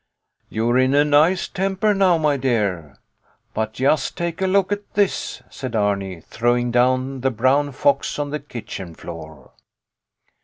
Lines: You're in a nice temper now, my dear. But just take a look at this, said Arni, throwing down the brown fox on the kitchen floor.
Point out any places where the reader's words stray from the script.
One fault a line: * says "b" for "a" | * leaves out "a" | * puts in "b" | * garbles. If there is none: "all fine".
all fine